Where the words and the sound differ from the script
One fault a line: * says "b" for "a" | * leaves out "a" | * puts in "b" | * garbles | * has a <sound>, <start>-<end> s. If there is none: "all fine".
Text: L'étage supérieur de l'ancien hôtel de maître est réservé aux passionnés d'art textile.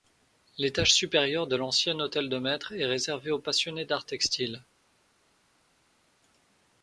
all fine